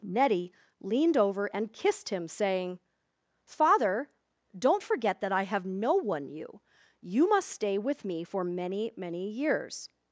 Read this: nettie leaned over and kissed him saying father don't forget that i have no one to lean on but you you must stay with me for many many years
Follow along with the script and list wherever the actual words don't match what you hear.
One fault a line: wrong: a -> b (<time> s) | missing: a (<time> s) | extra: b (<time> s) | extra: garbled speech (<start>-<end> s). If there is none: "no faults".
missing: to lean on but (6.3 s)